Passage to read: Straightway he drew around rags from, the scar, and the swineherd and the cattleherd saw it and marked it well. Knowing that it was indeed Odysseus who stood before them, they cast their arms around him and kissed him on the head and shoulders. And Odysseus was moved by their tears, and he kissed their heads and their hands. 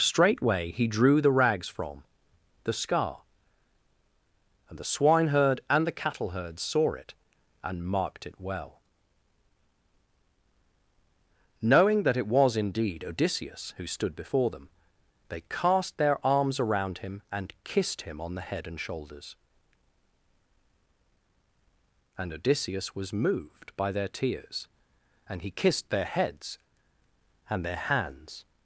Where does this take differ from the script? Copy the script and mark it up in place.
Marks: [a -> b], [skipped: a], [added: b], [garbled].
Straightway he drew [around -> the] rags from, the scar, and the swineherd and the cattleherd saw it and marked it well. Knowing that it was indeed Odysseus who stood before them, they cast their arms around him and kissed him on the head and shoulders. And Odysseus was moved by their tears, and he kissed their heads and their hands.